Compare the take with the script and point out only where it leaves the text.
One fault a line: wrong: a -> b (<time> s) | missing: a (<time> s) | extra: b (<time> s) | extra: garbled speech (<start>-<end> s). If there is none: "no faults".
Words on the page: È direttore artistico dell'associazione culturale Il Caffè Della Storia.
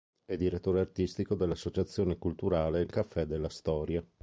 no faults